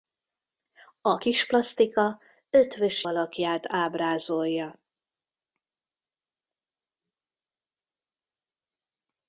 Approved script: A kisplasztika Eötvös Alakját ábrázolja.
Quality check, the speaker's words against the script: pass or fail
pass